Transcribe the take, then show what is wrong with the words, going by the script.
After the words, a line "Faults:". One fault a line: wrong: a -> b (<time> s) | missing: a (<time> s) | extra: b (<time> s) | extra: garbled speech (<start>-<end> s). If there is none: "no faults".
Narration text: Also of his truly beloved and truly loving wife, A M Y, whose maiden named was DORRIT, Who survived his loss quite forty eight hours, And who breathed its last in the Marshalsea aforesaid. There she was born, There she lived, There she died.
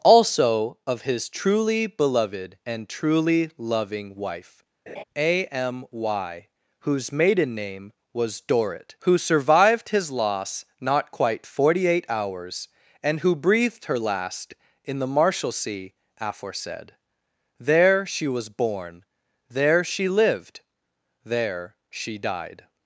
Also of his truly beloved and truly loving wife, A M Y, whose maiden name was DORRIT, Who survived his loss not quite forty eight hours, And who breathed her last in the Marshalsea aforesaid. There she was born, There she lived, There she died.
Faults:
wrong: named -> name (7.6 s)
extra: not (10.8 s)
wrong: its -> her (13.9 s)